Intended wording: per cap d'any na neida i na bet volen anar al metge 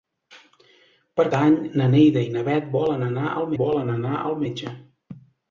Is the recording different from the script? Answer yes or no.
yes